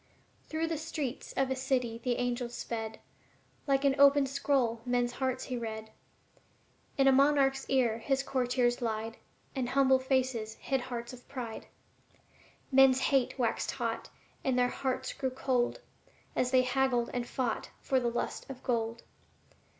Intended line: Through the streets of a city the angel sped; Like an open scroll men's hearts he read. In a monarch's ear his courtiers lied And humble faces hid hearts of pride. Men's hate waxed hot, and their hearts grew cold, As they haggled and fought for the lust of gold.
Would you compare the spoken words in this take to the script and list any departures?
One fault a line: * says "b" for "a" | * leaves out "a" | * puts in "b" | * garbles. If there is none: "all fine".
all fine